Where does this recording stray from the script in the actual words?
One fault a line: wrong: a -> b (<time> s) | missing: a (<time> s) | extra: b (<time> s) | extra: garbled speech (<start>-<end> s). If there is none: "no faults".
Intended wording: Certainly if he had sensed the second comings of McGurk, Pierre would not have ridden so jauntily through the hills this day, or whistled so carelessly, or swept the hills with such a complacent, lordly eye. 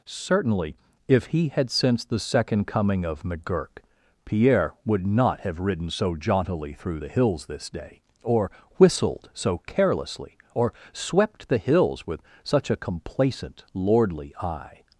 wrong: comings -> coming (2.7 s)